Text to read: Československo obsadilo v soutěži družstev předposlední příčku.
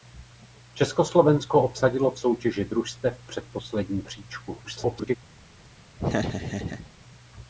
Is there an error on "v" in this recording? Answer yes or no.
no